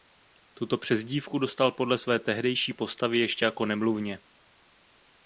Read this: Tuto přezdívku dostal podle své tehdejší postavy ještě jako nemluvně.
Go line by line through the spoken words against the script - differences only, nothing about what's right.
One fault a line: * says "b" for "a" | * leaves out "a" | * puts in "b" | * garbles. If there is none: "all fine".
all fine